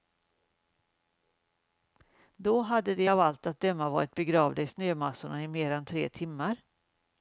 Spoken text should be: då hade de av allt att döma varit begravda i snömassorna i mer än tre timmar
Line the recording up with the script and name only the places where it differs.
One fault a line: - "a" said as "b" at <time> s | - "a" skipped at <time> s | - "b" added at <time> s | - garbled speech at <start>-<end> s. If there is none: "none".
none